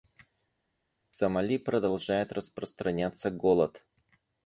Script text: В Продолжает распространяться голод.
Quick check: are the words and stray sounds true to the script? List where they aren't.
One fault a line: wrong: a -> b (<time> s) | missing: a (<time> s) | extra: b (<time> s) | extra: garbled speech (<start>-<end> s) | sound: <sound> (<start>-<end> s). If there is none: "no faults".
extra: Сомали (1.1 s)